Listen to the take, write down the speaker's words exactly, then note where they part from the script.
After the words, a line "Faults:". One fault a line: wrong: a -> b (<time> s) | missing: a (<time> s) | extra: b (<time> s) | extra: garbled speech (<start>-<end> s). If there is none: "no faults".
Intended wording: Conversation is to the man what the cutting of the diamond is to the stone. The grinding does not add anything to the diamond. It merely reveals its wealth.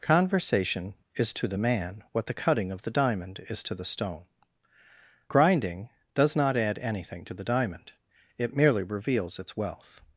Conversation is to the man what the cutting of the diamond is to the stone. Grinding does not add anything to the diamond. It merely reveals its wealth.
Faults:
missing: The (4.2 s)